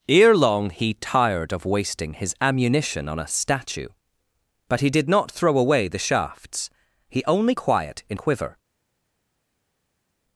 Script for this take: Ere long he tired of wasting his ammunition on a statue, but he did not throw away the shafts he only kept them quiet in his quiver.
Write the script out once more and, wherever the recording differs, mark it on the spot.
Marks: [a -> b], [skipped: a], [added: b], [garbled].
Ere long he tired of wasting his ammunition on a statue, but he did not throw away the shafts he only [skipped: kept them] quiet in [skipped: his] quiver.